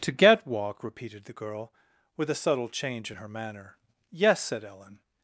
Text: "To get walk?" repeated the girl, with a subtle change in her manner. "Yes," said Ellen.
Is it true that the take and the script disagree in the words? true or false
false